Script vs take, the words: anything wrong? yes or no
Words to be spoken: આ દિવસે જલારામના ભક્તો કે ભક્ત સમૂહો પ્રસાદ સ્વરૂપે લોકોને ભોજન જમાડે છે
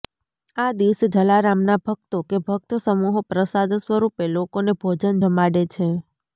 no